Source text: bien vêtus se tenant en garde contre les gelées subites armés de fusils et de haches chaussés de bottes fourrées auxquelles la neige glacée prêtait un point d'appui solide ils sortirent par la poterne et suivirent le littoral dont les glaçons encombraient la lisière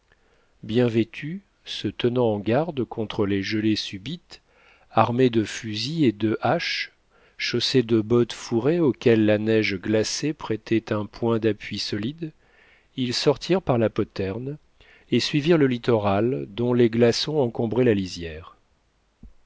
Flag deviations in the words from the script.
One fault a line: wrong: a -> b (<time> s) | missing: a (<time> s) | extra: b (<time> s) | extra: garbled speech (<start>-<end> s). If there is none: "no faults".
no faults